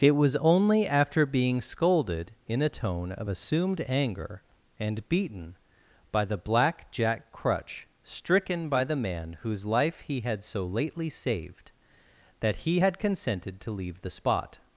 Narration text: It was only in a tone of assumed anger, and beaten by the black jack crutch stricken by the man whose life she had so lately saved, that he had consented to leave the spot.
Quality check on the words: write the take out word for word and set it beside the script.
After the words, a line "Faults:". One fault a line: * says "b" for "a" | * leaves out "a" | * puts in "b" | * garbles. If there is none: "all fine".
It was only after being scolded in a tone of assumed anger, and beaten by the black jack crutch stricken by the man whose life he had so lately saved, that he had consented to leave the spot.
Faults:
* puts in "after being scolded"
* says "he" for "she"